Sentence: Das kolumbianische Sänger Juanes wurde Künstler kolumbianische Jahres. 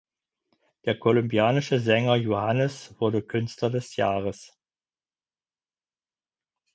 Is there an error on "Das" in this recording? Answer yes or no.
yes